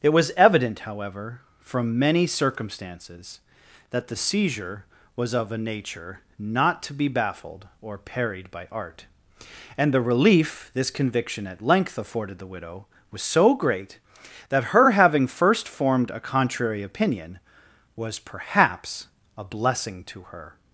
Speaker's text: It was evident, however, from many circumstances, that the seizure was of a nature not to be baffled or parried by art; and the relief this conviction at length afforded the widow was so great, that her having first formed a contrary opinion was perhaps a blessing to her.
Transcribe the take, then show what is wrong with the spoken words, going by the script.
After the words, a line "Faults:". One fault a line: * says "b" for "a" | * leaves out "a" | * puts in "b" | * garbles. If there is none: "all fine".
It was evident, however, from many circumstances, that the seizure was of a nature not to be baffled or parried by art; and the relief this conviction at length afforded the widow was so great, that her having first formed a contrary opinion was perhaps a blessing to her.
Faults:
all fine